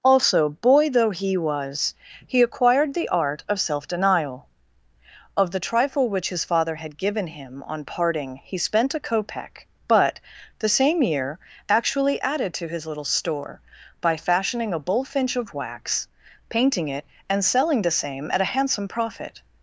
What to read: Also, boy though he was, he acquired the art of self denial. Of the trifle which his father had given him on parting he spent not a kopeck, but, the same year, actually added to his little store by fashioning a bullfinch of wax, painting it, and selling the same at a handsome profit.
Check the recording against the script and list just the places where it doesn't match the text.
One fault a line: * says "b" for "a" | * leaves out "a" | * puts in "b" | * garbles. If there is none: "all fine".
* leaves out "not"